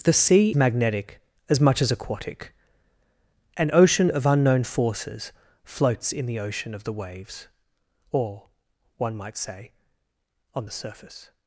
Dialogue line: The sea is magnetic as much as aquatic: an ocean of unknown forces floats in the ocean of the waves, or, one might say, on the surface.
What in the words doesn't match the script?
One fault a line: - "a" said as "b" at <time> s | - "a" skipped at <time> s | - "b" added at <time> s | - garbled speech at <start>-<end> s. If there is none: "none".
- "is" skipped at 0.5 s